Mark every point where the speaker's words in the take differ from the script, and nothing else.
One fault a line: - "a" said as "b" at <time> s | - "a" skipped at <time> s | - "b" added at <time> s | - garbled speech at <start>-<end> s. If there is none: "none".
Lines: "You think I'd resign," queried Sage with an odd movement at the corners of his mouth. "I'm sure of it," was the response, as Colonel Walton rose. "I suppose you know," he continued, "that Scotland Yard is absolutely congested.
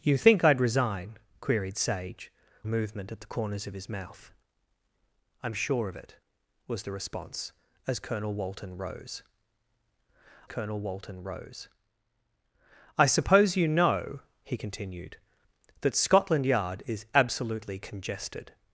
- "with an odd" skipped at 2.3 s
- "Colonel Walton rose" added at 10.5 s